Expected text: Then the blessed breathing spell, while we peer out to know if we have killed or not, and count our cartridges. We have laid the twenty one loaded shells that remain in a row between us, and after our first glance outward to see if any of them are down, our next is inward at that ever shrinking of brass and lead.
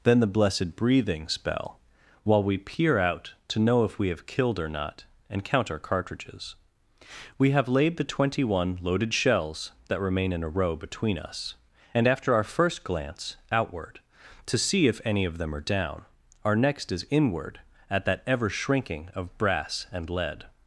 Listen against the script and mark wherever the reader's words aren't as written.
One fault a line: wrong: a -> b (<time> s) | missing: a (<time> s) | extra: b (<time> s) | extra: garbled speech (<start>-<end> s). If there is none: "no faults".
no faults